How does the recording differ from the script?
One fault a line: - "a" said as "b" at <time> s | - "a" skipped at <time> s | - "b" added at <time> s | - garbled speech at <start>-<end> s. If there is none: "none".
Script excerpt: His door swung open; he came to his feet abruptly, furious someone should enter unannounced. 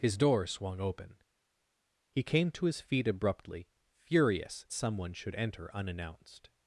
none